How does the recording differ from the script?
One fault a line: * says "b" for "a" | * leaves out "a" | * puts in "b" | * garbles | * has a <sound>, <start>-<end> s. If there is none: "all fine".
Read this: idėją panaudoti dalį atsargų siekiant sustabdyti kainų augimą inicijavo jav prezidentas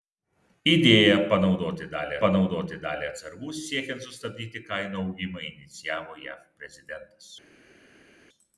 * puts in "panaudoti dalį"